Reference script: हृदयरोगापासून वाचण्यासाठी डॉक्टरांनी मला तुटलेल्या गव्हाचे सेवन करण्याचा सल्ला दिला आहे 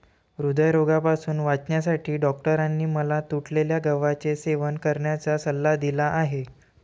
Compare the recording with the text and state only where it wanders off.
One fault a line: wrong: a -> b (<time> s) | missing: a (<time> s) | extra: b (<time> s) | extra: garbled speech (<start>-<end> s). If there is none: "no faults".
no faults